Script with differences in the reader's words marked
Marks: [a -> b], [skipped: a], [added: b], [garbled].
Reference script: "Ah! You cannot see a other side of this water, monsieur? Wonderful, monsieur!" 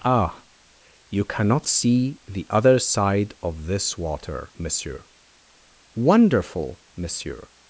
"Ah! You cannot see [a -> the] other side of this water, monsieur? Wonderful, monsieur!"